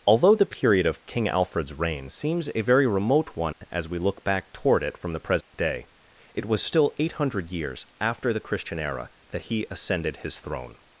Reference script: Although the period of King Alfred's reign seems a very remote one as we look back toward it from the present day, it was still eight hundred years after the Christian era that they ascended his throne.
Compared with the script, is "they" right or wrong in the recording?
wrong